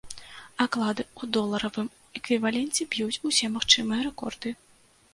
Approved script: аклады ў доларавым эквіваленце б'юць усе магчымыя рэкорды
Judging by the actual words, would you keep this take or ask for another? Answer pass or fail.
pass